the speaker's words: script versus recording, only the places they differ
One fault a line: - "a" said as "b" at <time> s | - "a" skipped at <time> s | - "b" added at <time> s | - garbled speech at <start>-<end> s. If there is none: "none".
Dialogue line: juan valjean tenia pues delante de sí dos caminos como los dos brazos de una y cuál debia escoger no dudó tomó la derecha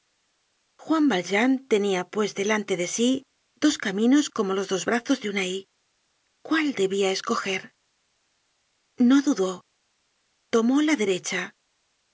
none